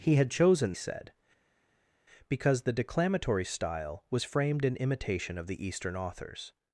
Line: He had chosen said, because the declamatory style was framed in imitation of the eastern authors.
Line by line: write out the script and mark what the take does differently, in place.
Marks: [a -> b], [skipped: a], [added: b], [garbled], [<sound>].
He had chosen said, because the declamatory style was framed in imitation of the eastern authors.